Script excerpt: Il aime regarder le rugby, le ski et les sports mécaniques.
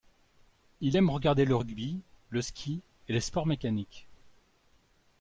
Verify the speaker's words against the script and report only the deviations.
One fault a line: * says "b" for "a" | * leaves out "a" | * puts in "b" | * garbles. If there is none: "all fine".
all fine